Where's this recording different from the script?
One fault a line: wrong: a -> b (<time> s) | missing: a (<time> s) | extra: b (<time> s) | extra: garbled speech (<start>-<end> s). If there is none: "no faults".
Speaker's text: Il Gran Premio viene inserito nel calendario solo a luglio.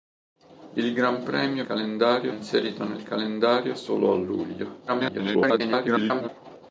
wrong: viene -> calendario (1.6 s)
extra: garbled speech (4.9-6.3 s)